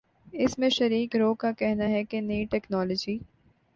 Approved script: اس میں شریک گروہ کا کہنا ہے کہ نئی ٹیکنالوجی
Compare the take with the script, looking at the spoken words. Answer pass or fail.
pass